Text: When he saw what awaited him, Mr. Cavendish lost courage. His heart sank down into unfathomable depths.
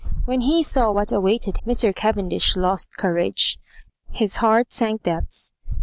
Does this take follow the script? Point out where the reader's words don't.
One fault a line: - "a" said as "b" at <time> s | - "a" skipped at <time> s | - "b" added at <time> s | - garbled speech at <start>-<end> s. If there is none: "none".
- "him" skipped at 1.6 s
- "down into unfathomable" skipped at 5.0 s